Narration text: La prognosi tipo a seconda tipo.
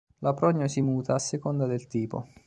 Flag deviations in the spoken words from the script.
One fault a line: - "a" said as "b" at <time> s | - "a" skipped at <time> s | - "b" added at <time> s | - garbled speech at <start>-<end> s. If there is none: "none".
- "tipo" said as "muta" at 0.8 s
- "del" added at 1.6 s